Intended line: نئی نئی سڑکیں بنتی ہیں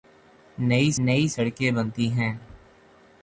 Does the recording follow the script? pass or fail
pass